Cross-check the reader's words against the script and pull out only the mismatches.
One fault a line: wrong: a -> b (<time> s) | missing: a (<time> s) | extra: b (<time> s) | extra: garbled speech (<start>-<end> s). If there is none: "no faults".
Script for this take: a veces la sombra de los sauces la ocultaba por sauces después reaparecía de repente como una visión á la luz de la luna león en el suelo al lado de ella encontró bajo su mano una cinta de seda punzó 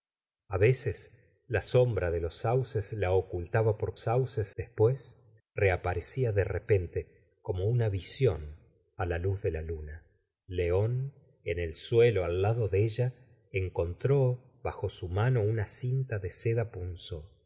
no faults